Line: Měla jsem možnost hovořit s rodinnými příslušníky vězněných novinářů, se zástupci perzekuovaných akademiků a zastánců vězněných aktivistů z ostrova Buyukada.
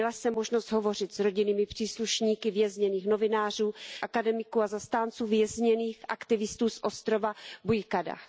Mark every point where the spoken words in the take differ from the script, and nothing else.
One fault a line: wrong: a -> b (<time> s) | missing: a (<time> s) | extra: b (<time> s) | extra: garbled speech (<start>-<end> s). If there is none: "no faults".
missing: se zástupci perzekuovaných (3.7 s)